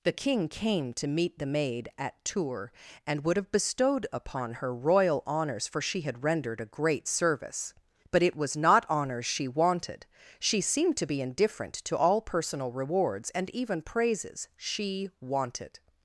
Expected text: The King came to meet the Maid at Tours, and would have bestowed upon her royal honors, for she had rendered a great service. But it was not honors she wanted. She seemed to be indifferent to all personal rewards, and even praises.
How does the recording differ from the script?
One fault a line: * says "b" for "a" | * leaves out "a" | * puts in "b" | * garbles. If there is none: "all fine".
* puts in "She wanted"